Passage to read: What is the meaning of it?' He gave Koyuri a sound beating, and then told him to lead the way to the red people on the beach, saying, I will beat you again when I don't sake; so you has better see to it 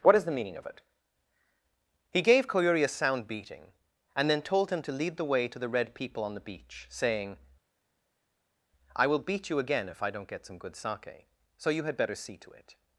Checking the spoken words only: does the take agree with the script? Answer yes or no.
no